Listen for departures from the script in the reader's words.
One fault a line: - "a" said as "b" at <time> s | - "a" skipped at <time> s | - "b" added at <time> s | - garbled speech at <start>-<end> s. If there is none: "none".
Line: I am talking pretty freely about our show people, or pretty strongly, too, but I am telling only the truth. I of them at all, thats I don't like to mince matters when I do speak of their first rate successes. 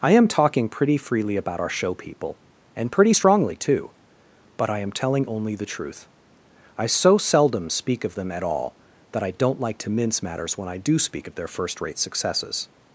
- "or" said as "and" at 2.8 s
- "so seldom speak" added at 6.9 s
- "thats" said as "that" at 9.1 s